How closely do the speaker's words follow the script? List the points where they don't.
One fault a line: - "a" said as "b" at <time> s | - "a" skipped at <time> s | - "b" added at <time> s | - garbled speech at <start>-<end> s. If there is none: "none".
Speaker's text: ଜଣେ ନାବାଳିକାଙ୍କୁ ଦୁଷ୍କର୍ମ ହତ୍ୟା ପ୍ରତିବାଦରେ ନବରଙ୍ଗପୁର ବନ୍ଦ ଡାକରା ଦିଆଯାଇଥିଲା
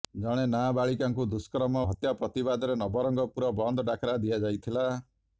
none